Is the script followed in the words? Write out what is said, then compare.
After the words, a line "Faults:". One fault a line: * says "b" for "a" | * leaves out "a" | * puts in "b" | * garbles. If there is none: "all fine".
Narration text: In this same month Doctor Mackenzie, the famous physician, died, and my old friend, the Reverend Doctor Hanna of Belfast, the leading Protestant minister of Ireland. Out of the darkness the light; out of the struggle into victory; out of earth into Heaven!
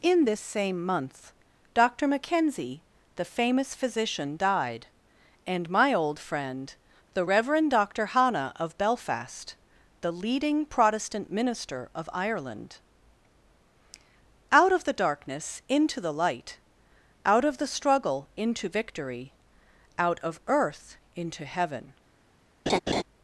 In this same month Doctor Mackenzie, the famous physician, died, and my old friend, the Reverend Doctor Hanna of Belfast, the leading Protestant minister of Ireland. Out of the darkness into the light; out of the struggle into victory; out of earth into Heaven!
Faults:
* puts in "into"